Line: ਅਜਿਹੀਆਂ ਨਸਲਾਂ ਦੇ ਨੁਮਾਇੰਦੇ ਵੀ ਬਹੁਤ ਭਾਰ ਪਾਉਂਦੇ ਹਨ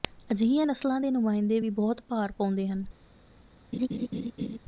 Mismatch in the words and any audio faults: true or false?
true